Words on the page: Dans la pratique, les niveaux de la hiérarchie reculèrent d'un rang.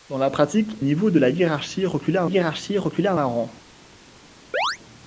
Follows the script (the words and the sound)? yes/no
no